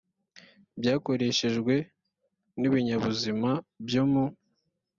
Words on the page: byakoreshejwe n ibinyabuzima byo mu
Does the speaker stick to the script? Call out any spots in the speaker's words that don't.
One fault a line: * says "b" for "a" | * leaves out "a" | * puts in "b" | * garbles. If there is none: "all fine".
all fine